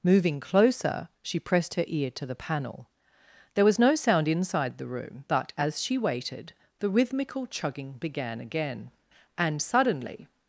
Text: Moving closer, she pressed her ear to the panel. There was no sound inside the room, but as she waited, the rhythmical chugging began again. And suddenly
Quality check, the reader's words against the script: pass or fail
pass